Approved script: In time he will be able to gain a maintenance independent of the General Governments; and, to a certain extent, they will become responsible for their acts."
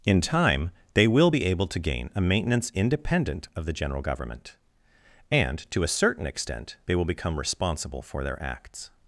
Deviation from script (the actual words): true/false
true